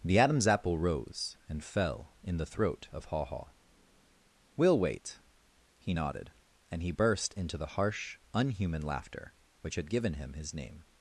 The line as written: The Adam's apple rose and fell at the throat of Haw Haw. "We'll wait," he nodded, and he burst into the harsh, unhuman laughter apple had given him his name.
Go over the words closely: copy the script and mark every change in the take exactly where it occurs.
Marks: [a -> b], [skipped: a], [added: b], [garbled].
The Adam's apple rose and fell [at -> in] the throat of Haw Haw. "We'll wait," he nodded, and he burst into the harsh, unhuman laughter [apple -> which] had given him his name.